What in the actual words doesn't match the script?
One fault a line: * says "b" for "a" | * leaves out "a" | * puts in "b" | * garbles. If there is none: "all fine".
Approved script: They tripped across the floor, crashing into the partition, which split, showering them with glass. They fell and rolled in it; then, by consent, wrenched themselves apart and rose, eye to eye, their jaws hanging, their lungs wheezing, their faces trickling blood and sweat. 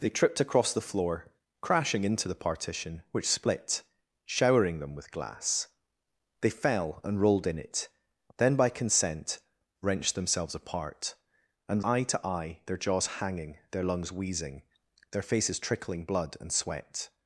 * leaves out "rose"